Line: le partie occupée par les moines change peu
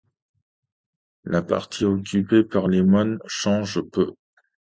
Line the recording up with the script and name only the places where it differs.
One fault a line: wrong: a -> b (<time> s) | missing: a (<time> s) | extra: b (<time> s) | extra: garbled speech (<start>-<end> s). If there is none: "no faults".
wrong: le -> la (1.2 s)